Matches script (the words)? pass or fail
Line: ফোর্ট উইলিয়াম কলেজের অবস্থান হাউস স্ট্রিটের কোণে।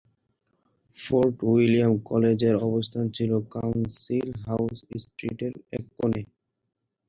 fail